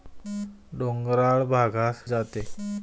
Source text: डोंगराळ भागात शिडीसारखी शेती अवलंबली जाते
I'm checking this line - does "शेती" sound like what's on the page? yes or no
no